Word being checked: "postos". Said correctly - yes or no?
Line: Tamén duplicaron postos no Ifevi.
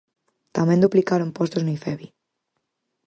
yes